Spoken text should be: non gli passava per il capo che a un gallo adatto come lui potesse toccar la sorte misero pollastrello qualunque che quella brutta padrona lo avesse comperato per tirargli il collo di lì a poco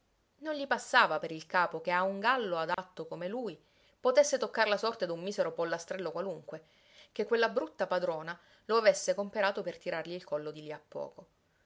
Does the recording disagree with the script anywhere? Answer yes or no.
yes